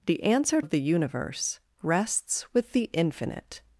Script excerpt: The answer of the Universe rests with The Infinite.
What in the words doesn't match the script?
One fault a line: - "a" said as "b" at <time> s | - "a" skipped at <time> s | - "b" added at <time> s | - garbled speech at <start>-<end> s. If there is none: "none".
none